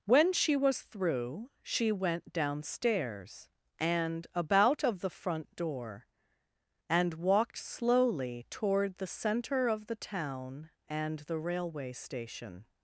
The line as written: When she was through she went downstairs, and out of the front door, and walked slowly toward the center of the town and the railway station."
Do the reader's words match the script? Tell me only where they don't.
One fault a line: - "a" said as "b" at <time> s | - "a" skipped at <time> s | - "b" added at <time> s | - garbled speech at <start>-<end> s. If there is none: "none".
- "out" said as "about" at 4.3 s